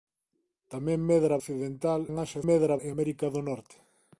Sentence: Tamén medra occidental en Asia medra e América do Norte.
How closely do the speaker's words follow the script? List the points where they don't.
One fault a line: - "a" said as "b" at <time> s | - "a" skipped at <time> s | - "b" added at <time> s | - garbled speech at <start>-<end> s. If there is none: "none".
none